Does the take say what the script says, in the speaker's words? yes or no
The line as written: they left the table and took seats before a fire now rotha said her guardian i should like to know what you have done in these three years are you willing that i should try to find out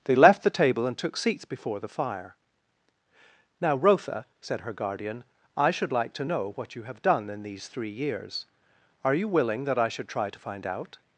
no